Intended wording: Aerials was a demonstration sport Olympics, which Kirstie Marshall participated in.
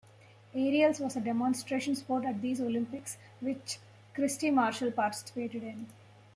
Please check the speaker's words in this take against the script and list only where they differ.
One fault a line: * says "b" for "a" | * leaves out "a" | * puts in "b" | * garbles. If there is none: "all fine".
* puts in "at these"